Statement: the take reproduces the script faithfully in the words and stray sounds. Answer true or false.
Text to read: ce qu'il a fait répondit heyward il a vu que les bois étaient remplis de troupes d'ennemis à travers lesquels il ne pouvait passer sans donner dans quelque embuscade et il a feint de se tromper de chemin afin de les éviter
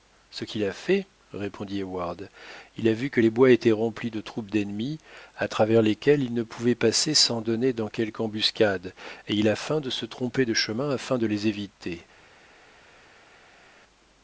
true